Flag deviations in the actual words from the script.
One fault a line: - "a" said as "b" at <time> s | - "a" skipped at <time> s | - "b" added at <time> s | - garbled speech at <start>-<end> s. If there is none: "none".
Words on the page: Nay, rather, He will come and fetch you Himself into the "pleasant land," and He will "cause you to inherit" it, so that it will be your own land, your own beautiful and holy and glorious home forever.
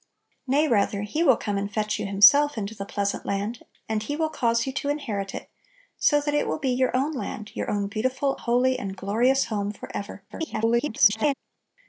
- "and" skipped at 8.4 s
- garbled speech at 10.3-11.3 s